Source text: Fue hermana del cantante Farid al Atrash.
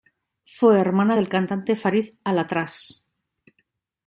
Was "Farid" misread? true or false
false